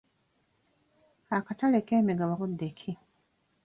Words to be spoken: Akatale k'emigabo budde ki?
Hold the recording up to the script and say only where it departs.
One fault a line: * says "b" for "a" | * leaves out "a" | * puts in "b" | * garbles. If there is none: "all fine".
all fine